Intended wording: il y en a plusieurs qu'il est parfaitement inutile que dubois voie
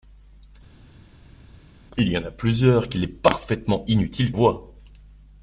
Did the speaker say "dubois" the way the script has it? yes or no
no